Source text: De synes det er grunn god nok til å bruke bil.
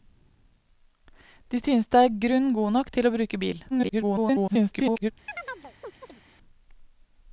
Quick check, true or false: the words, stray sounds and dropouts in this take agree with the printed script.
false